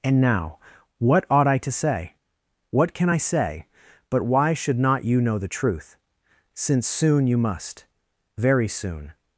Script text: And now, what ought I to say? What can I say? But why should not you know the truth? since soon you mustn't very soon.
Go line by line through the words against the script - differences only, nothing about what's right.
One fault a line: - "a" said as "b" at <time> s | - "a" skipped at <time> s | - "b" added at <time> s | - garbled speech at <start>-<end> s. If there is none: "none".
- "mustn't" said as "must" at 7.4 s